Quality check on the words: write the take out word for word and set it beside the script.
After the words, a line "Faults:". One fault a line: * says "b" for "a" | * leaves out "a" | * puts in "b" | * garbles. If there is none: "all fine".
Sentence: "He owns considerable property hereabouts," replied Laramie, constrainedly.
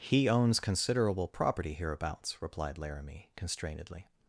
"He owns considerable property hereabouts," replied Laramie, constrainedly.
Faults:
all fine